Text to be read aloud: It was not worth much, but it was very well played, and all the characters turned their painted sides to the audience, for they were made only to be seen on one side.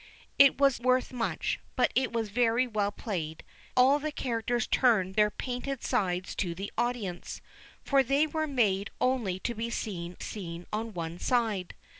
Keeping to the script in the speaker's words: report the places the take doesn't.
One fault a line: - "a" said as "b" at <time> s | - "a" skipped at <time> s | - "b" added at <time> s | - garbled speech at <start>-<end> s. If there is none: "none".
- "not" skipped at 0.8 s
- "and" skipped at 3.4 s
- "seen" added at 10.2 s